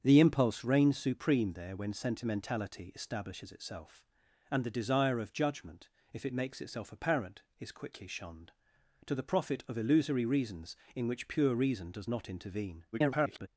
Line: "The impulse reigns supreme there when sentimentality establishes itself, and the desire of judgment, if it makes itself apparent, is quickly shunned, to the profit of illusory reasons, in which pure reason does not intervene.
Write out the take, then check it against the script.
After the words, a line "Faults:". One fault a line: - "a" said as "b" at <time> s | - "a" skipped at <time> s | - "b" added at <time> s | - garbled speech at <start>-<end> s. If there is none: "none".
"The impulse reigns supreme there when sentimentality establishes itself, and the desire of judgment, if it makes itself apparent, is quickly shunned, to the profit of illusory reasons, in which pure reason does not intervene. [garbled]
Faults:
- garbled speech at 12.9-13.5 s